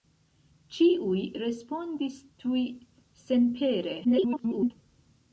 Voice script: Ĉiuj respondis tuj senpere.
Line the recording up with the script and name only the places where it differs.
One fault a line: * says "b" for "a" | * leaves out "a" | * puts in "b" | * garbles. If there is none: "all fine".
* garbles